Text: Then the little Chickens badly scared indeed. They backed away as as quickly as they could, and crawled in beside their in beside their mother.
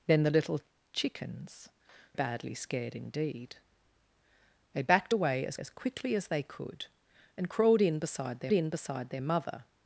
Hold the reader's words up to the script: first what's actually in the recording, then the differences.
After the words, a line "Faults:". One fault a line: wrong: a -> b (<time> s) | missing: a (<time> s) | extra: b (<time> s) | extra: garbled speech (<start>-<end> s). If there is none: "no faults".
Then the little Chickens badly scared indeed. They backed away as as quickly as they could, and crawled in beside their in beside their mother.
Faults:
no faults